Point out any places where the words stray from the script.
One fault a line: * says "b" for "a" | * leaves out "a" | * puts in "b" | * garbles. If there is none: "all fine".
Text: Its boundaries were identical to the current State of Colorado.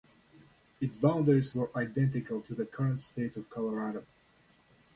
all fine